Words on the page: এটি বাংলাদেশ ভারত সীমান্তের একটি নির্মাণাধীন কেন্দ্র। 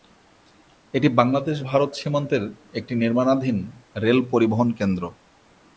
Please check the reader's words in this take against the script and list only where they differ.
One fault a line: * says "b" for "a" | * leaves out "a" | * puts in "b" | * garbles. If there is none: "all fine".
* puts in "রেল পরিবহন"